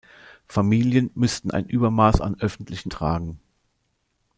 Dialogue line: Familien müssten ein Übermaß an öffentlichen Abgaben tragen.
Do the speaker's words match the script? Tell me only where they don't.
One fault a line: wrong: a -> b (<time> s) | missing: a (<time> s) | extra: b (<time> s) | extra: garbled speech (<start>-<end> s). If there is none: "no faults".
missing: Abgaben (2.9 s)